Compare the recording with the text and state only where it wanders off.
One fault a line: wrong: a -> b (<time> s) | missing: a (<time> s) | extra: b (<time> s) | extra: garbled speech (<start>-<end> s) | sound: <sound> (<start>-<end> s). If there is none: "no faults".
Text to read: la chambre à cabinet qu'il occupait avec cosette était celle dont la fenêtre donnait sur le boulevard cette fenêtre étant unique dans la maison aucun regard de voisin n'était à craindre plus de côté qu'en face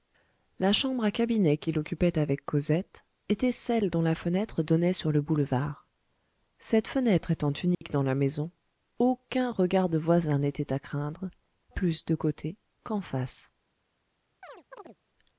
sound: dropout (7.7-7.8 s)
sound: chirp (14.4-15.0 s)